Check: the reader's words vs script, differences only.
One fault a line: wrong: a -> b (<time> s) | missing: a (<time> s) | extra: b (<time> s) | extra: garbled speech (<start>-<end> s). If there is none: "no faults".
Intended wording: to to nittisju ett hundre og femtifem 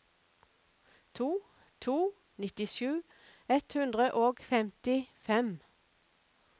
no faults